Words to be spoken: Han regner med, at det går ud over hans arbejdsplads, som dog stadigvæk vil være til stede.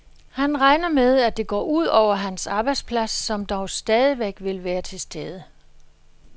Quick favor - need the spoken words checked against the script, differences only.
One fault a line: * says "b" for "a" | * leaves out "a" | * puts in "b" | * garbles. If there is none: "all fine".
all fine